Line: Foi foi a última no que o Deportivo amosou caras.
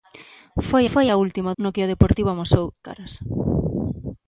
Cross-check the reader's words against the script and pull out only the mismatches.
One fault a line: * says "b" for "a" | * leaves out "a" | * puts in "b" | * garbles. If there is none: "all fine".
all fine